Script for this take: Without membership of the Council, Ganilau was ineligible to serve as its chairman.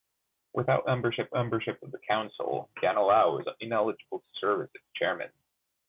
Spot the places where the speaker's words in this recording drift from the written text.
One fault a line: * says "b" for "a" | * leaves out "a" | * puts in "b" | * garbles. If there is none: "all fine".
* puts in "membership"